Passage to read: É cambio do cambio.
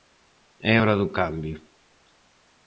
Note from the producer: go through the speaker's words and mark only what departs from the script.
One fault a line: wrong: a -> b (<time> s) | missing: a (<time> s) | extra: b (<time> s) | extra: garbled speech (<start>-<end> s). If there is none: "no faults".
wrong: cambio -> hora (0.8 s)